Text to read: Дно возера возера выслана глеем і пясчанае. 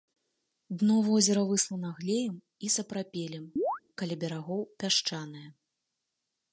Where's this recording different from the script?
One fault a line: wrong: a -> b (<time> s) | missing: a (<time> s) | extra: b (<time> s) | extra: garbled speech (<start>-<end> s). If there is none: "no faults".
missing: возера (1.4 s)
extra: сапрапелем каля берагоў (2.8 s)